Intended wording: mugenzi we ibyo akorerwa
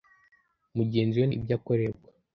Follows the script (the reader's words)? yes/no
yes